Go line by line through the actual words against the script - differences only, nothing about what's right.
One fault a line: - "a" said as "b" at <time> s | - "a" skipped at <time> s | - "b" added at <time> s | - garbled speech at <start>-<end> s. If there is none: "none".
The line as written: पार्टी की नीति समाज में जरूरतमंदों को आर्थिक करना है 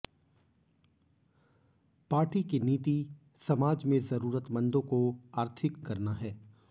none